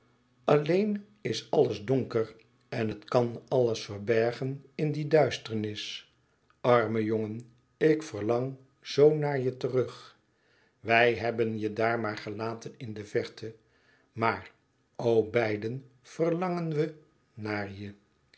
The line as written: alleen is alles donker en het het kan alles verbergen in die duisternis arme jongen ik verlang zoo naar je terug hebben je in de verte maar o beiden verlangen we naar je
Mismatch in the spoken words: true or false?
true